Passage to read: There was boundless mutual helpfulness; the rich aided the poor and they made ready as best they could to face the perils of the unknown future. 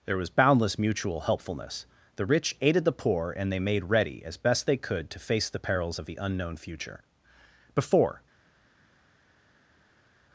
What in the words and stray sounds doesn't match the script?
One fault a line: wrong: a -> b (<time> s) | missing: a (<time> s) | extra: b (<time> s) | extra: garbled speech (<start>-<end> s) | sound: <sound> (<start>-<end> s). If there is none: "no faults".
extra: Before (7.7 s)